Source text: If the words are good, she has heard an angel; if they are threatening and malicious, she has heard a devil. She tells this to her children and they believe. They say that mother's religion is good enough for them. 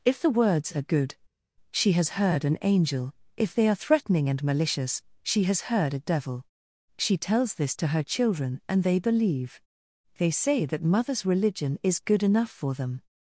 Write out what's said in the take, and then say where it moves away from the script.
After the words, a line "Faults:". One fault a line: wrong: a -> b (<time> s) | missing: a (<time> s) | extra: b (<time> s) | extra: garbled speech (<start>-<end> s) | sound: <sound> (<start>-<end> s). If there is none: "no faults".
If the words are good, she has heard an angel; if they are threatening and malicious, she has heard a devil. She tells this to her children and they believe. They say that mother's religion is good enough for them.
Faults:
no faults